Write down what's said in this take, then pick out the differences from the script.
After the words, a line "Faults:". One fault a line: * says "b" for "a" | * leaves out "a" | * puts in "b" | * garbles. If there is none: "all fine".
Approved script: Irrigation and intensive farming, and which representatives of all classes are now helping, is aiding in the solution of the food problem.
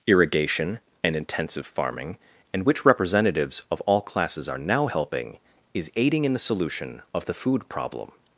Irrigation and intensive farming, and which representatives of all classes are now helping, is aiding in the solution of the food problem.
Faults:
all fine